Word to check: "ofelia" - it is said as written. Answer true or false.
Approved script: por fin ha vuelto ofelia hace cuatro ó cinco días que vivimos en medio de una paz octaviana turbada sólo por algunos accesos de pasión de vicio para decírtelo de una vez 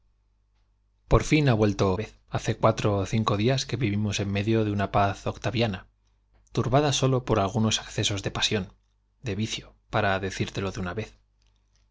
false